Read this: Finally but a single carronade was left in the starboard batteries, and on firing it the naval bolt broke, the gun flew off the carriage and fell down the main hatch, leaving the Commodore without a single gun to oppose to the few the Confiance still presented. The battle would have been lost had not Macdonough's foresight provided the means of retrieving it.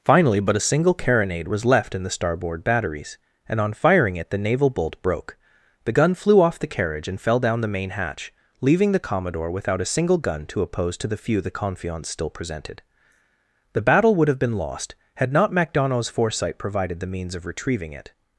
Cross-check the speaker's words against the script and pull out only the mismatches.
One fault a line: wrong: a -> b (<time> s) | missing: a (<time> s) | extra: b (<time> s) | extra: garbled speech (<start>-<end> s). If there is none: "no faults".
no faults